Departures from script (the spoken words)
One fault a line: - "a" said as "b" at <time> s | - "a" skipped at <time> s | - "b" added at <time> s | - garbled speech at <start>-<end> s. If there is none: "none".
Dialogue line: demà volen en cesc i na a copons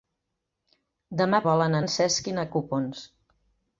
none